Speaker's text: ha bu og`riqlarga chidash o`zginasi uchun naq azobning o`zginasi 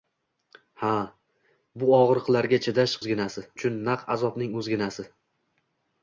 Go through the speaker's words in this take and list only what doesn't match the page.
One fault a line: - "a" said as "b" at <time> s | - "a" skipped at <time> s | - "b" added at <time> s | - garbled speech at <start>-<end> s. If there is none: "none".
none